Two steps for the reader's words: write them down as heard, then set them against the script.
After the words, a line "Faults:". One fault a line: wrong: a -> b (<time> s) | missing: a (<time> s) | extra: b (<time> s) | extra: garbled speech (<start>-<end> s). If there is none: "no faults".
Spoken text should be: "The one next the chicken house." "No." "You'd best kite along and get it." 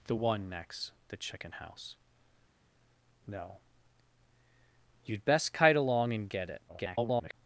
"The one next the chicken house." "No." "You'd best kite along and get it." [garbled]
Faults:
extra: garbled speech (6.7-7.3 s)